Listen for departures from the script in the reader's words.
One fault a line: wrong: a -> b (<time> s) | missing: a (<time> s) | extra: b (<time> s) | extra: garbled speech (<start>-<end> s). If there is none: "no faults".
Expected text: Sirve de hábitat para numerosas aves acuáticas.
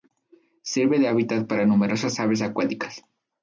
no faults